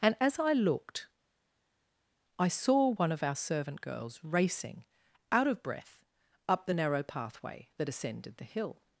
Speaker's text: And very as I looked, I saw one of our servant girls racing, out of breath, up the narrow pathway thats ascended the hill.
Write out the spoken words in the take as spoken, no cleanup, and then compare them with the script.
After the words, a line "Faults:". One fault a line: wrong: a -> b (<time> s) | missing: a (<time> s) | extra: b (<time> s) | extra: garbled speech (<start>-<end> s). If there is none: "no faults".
And as I looked, I saw one of our servant girls racing, out of breath, up the narrow pathway that ascended the hill.
Faults:
missing: very (0.1 s)
wrong: thats -> that (7.8 s)